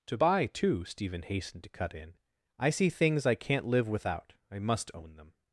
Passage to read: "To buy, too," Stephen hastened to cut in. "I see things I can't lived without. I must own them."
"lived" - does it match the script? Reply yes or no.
no